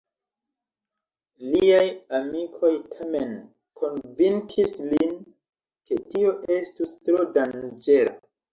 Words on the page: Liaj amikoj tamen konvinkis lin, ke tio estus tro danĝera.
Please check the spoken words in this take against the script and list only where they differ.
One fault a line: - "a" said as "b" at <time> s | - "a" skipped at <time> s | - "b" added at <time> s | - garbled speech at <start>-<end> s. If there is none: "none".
none